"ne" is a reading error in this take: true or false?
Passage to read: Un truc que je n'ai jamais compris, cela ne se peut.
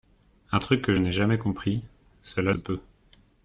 true